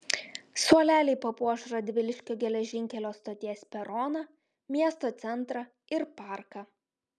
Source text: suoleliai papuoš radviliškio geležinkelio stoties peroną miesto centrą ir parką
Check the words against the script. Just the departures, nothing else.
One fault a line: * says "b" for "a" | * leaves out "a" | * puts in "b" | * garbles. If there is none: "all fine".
all fine